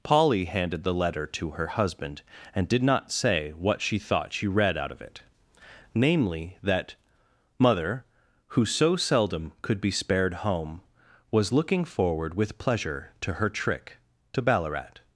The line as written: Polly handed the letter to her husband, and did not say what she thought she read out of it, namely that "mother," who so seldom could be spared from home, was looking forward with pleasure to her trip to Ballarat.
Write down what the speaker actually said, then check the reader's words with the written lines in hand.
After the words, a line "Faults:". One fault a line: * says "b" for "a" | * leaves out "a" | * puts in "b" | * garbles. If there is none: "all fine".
Polly handed the letter to her husband, and did not say what she thought she read out of it, namely that "mother," who so seldom could be spared home, was looking forward with pleasure to her trick to Ballarat.
Faults:
* leaves out "from"
* says "trick" for "trip"